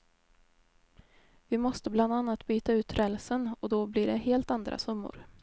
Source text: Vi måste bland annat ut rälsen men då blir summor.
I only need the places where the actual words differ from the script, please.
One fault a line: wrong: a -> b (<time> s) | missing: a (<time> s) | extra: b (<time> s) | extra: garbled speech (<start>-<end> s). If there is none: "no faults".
extra: byta (2.5 s)
wrong: men -> och (3.6 s)
extra: det helt andra (4.1 s)